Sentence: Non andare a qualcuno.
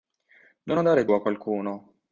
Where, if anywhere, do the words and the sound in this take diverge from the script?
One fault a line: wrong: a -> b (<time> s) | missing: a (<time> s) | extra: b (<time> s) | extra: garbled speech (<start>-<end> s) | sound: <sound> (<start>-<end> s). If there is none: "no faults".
no faults